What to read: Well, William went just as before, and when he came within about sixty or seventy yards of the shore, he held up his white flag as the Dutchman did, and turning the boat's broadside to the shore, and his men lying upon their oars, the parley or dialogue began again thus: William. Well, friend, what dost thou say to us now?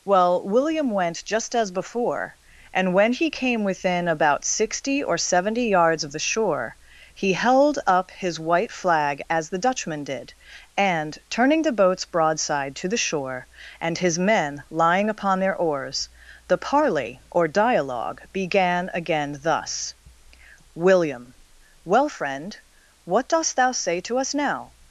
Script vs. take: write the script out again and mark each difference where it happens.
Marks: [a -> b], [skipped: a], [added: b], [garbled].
Well, William went just as before, and when he came within about sixty or seventy yards of the shore, he held up his white flag as the Dutchman did, and turning the boat's broadside to the shore, and his men lying upon their oars, the parley or dialogue began again thus: William. Well, friend, what dost thou say to us now?